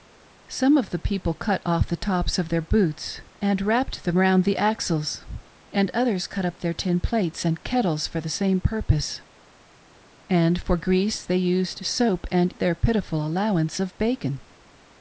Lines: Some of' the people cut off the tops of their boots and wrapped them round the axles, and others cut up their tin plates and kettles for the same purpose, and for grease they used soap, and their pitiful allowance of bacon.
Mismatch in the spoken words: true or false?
false